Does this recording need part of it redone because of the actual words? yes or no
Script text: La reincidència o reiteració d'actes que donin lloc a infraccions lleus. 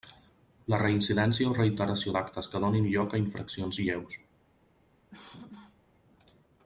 no